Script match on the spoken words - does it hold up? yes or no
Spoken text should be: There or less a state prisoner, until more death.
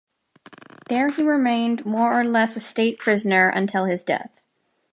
no